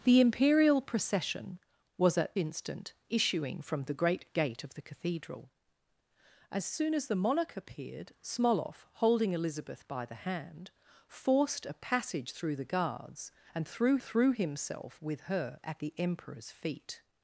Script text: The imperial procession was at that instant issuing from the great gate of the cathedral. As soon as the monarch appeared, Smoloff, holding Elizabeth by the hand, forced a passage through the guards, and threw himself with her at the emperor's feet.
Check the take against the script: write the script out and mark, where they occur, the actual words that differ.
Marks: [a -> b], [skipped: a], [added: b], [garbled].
The imperial procession was at [skipped: that] instant issuing from the great gate of the cathedral. As soon as the monarch appeared, Smoloff, holding Elizabeth by the hand, forced a passage through the guards, and threw [added: threw] himself with her at the emperor's feet.